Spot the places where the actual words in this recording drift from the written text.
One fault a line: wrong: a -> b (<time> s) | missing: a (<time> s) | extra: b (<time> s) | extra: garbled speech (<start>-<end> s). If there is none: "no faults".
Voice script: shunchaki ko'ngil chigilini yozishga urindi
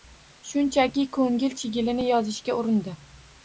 no faults